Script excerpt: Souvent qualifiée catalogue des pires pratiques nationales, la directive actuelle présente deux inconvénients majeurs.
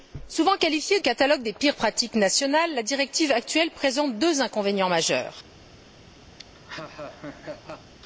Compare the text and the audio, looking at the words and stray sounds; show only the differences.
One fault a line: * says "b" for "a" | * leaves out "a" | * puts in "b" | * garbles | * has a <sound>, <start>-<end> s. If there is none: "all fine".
* has a laugh, 6.4-7.9 s